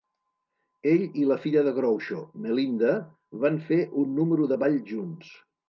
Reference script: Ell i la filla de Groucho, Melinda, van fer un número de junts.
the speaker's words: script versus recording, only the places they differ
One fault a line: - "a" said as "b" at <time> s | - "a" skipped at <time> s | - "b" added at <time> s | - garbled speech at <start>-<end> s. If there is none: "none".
- "ball" added at 4.6 s